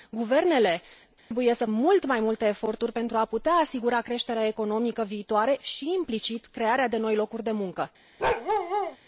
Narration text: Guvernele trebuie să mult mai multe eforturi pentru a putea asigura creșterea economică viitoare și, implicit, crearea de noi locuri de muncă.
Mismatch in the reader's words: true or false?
false